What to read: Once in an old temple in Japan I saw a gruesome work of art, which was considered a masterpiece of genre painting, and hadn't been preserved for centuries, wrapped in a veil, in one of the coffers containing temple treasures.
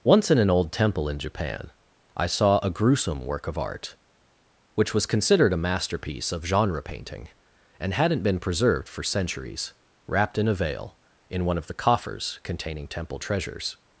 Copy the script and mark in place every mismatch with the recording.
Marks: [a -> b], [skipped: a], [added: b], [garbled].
Once in an old temple in Japan I saw a gruesome work of art, which was considered a masterpiece of genre painting, and hadn't been preserved for centuries, wrapped in a veil, in one of the coffers containing temple treasures.